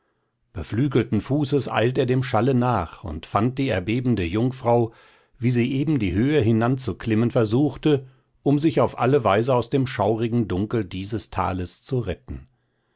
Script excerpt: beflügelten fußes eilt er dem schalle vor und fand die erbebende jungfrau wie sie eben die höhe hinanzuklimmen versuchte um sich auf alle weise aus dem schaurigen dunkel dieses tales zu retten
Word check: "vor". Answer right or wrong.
wrong